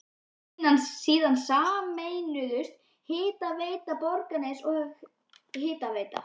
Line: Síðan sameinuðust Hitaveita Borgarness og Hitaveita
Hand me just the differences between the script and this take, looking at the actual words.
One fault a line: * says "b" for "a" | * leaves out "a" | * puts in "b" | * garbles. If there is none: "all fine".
all fine